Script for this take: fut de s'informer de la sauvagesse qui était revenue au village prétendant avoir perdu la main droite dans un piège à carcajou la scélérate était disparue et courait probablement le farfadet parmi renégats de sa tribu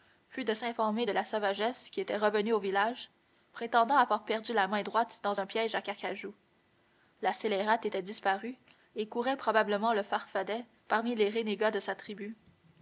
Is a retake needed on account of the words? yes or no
yes